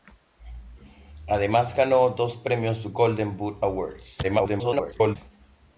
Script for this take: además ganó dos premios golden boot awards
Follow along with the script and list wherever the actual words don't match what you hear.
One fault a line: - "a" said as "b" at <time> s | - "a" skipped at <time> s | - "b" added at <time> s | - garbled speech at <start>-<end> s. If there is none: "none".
- garbled speech at 4.2-5.2 s